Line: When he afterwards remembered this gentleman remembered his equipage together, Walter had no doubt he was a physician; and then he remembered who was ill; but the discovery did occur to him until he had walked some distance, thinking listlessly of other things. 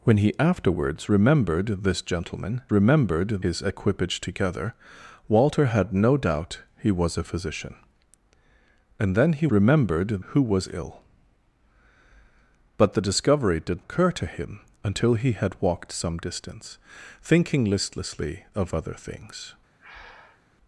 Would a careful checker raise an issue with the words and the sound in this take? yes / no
yes